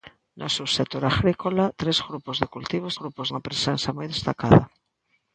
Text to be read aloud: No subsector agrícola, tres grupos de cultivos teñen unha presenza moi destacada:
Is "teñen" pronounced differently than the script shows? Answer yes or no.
yes